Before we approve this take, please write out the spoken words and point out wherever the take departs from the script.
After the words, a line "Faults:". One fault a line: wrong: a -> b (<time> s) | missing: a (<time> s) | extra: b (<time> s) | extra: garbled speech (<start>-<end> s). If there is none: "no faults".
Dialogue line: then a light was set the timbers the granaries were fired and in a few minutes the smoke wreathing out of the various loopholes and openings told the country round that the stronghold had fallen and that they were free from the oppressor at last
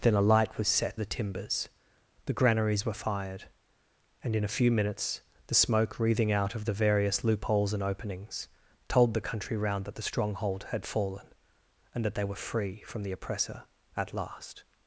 then a light was set the timbers the granaries were fired and in a few minutes the smoke wreathing out of the various loopholes and openings told the country round that the stronghold had fallen and that they were free from the oppressor at last
Faults:
no faults